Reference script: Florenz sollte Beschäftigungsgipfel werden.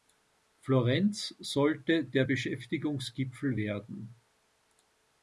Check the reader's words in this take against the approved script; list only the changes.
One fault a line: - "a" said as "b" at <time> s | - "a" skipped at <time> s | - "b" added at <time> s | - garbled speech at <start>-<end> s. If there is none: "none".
- "der" added at 2.0 s